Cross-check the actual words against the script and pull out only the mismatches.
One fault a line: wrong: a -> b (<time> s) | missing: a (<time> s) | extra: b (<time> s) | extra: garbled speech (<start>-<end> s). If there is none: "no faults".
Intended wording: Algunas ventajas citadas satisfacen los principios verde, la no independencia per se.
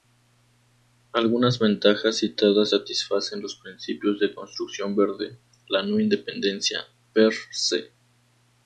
extra: de construcción (4.2 s)